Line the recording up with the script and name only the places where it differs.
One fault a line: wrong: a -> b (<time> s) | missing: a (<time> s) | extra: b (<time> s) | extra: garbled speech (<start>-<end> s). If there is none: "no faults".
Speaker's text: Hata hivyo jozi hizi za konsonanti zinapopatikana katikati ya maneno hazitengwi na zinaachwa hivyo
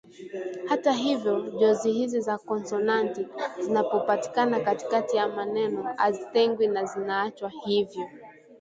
no faults